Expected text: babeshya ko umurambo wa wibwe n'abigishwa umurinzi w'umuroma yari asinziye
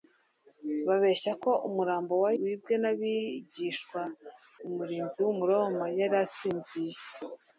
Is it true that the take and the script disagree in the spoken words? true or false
false